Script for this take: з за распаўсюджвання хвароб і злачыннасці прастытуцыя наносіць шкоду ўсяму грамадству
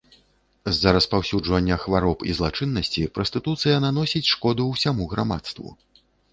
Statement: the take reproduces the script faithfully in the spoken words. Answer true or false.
true